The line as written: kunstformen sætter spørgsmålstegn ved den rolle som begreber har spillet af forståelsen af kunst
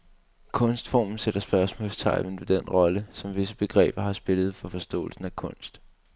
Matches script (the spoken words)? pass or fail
fail